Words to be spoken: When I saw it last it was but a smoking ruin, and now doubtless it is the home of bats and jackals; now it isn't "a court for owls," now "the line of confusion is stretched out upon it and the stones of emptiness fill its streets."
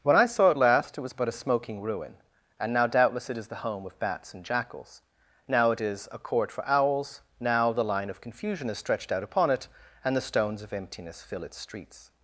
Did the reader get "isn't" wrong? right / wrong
wrong